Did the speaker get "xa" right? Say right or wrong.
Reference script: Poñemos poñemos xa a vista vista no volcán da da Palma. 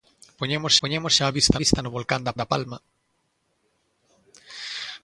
right